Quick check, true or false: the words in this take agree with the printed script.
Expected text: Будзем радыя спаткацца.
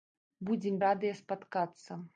true